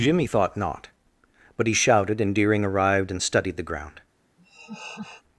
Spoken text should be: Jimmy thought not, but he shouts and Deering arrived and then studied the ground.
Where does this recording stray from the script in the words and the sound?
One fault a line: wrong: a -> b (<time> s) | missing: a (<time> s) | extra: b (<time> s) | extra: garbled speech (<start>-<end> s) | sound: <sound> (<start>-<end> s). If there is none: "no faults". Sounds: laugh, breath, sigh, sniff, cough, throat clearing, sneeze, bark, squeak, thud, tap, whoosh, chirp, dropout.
wrong: shouts -> shouted (1.7 s)
missing: then (3.2 s)
sound: laugh (4.4-5.2 s)